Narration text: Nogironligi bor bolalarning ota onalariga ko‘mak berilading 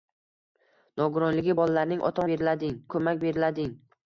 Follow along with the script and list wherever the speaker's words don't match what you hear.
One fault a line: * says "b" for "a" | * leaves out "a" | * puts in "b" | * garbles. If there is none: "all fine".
* leaves out "bor"
* says "berilading" for "onalariga"